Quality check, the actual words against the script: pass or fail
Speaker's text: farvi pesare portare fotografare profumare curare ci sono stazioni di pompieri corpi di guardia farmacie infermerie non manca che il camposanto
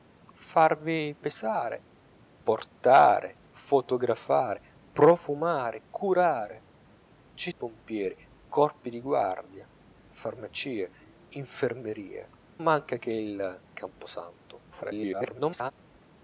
fail